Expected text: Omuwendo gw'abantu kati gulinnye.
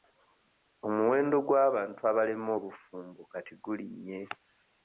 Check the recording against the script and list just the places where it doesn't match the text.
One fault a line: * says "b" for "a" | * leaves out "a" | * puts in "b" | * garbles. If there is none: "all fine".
* puts in "abalemwa obufumbo"